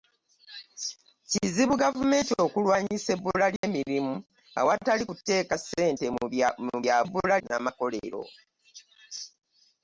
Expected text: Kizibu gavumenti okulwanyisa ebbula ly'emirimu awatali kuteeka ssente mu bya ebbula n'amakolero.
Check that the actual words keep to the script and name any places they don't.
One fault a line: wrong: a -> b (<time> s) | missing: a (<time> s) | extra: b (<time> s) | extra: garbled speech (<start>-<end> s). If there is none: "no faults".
no faults